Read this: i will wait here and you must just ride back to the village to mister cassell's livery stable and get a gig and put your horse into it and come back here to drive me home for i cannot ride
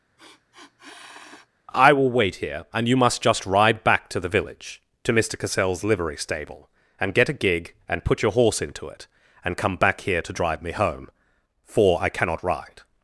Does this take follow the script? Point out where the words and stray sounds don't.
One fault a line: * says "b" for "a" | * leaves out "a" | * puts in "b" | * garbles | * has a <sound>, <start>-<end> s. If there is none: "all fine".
* has a sniff, 0.2-1.5 s